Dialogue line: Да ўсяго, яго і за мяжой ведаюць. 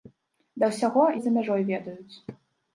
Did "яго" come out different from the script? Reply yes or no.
yes